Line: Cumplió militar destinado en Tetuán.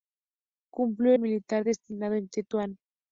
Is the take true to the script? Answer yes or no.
yes